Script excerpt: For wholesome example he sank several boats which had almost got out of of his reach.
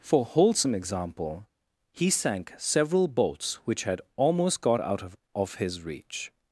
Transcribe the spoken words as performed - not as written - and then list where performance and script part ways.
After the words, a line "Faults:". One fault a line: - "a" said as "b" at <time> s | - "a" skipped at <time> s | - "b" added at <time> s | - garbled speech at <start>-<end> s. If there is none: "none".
For wholesome example he sank several boats which had almost got out of of his reach.
Faults:
none